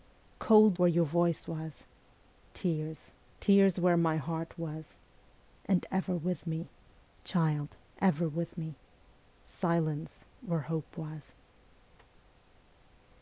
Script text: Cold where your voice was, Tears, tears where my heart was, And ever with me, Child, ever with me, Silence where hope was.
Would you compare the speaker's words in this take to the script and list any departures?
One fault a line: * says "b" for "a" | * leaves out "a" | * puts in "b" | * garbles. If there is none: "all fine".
all fine